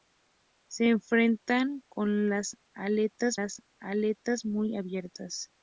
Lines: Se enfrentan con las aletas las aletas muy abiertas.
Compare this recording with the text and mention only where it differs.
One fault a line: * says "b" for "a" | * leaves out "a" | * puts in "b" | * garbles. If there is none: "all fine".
all fine